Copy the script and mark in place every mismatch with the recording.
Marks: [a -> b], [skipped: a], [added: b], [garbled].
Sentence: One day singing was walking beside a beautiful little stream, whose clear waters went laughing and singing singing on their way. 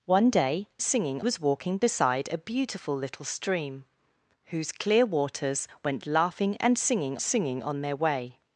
One day singing was walking beside a beautiful little stream, whose clear waters went laughing and singing singing on their way.